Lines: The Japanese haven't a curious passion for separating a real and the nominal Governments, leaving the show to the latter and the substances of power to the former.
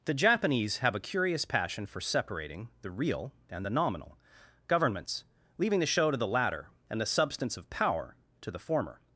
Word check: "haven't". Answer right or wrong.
wrong